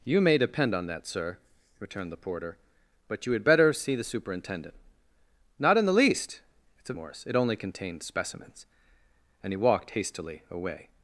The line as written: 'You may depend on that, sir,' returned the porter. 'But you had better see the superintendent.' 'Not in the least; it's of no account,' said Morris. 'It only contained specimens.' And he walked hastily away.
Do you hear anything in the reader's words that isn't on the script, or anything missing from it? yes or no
yes